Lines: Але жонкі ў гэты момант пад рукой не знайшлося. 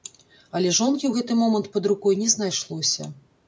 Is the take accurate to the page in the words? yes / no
yes